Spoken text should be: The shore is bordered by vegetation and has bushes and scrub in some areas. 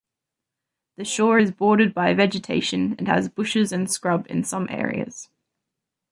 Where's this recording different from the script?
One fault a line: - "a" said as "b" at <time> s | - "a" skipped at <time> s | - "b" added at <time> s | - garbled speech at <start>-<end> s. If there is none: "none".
none